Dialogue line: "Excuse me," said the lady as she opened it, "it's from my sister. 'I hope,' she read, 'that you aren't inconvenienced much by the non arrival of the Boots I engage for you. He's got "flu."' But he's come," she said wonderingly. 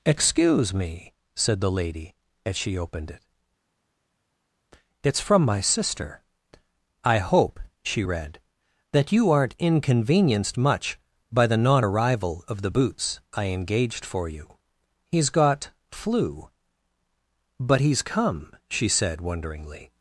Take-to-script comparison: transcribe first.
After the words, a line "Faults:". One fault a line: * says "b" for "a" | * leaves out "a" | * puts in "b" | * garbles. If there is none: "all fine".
"Excuse me," said the lady as she opened it, "it's from my sister. 'I hope,' she read, 'that you aren't inconvenienced much by the non arrival of the Boots I engaged for you. He's got "flu."' But he's come," she said wonderingly.
Faults:
* says "engaged" for "engage"